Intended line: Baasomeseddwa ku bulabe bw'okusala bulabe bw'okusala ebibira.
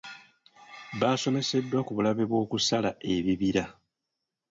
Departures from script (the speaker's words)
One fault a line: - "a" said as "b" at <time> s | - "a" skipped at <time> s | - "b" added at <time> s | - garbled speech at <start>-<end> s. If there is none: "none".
- "bulabe bw'okusala" skipped at 2.9 s